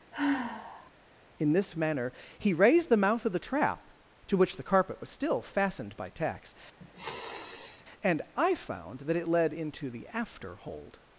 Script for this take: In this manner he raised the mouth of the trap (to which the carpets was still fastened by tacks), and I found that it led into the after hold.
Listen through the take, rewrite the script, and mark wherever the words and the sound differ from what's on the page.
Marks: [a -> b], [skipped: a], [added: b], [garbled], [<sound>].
[sigh] In this manner he raised the mouth of the trap (to which the [carpets -> carpet] was still fastened by tacks), [sniff] and I found that it led into the after hold.